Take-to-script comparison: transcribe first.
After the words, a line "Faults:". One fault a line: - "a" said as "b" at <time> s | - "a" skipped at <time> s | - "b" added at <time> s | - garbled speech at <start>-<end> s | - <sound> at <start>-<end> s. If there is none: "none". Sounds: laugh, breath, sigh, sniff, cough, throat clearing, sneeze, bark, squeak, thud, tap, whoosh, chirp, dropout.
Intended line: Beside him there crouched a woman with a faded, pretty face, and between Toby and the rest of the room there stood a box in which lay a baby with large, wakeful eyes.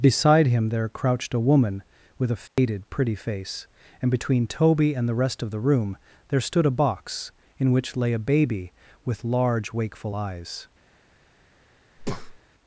Beside him there crouched a woman with a faded, pretty face, and between Toby and the rest of the room there stood a box in which lay a baby with large, wakeful eyes.
Faults:
- dropout at 2.5-2.6 s
- breath at 12.0-12.4 s